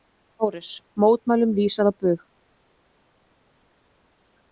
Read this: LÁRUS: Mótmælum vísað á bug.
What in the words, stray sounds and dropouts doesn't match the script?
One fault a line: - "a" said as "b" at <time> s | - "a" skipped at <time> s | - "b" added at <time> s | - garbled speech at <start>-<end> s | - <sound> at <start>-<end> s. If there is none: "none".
none